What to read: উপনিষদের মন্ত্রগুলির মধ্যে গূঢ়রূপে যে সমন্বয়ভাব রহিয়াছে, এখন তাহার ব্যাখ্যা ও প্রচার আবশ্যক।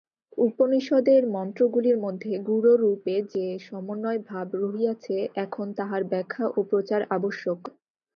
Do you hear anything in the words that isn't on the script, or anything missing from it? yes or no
no